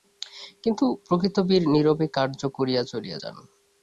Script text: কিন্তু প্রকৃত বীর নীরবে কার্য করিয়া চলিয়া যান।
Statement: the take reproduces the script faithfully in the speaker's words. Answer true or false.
true